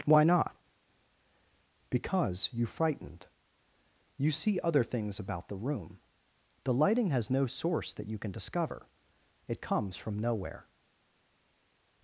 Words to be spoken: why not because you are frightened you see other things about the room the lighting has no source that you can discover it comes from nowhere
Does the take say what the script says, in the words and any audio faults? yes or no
no